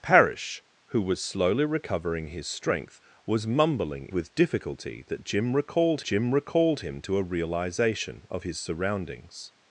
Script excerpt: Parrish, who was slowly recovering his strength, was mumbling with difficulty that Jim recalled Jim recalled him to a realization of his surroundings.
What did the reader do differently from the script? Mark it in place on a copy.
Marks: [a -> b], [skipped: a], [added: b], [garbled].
Parrish, who was slowly recovering his strength, was mumbling with difficulty that Jim recalled Jim recalled him to a realization of his surroundings.